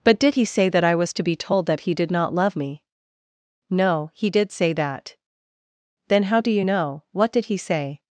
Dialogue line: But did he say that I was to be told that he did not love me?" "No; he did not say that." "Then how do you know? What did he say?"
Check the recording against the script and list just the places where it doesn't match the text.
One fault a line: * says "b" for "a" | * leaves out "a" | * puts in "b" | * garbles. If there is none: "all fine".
* leaves out "not"